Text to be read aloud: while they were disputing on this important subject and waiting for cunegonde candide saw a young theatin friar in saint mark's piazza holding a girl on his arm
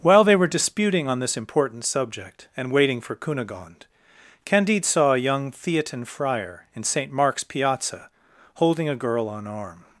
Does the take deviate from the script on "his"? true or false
true